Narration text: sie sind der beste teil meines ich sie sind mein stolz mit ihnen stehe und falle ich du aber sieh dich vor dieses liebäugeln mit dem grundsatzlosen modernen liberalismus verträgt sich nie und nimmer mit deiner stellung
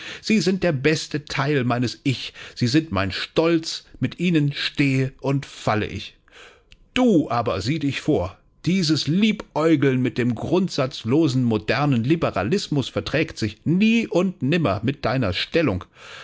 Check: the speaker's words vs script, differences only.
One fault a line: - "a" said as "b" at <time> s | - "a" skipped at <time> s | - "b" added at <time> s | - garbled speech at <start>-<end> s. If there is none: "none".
none